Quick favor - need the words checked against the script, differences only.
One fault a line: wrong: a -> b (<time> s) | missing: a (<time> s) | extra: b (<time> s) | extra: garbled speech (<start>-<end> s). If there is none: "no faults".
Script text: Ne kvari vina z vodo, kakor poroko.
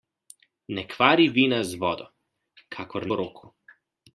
no faults